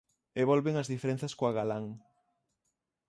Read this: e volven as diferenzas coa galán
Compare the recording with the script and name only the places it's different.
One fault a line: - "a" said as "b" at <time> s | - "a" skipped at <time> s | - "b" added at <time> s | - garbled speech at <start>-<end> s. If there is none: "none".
none